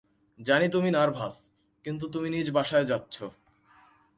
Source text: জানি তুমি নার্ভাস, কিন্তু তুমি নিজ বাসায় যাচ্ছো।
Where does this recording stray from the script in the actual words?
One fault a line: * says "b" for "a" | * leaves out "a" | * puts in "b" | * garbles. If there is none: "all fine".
all fine